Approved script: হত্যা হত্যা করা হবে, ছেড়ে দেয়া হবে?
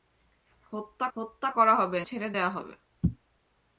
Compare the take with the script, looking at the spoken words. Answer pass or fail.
pass